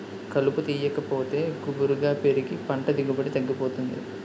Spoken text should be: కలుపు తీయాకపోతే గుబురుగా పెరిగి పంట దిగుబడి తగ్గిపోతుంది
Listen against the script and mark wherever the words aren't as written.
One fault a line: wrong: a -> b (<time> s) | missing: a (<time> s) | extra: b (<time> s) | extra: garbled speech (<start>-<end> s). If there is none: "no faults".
no faults